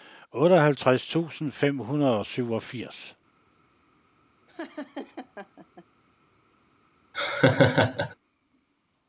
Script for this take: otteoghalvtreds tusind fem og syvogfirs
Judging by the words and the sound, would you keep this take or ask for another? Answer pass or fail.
fail